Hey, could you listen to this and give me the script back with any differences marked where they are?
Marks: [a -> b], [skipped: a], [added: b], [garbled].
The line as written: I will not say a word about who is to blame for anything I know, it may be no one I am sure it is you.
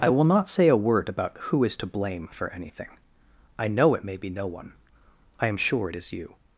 I will not say a word about who is to blame for anything I know, it may be no one I am sure it is you.